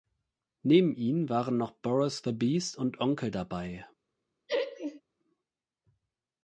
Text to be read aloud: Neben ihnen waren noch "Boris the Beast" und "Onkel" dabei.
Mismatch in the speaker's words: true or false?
false